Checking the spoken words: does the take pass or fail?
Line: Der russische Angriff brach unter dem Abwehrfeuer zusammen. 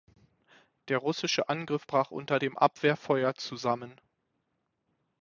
pass